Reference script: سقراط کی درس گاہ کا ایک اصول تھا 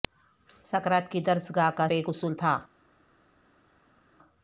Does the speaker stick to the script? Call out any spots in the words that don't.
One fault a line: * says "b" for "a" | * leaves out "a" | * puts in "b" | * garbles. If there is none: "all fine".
all fine